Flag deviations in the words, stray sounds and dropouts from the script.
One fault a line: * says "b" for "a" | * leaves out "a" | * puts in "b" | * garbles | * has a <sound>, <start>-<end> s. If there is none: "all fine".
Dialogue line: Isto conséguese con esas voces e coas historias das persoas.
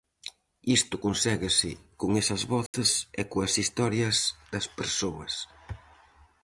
* has a dropout, 2.7-2.7 s